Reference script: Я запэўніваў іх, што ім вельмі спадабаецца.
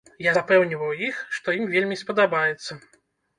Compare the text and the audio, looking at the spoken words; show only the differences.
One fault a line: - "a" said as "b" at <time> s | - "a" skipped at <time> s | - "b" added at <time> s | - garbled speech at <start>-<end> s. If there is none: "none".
none